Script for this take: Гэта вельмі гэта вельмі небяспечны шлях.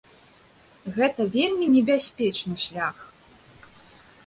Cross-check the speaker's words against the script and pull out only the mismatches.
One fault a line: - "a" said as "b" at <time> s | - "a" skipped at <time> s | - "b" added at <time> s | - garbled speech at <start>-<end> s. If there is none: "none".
- "гэта вельмі" skipped at 1.7 s